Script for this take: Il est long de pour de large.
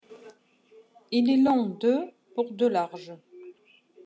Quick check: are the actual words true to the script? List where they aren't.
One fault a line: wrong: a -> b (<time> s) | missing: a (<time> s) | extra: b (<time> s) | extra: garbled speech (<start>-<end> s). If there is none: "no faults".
no faults